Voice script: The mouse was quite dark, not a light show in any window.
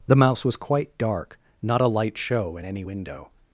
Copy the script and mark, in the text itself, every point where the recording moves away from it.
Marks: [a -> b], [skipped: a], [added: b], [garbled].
The mouse was quite dark, not a light show in any window.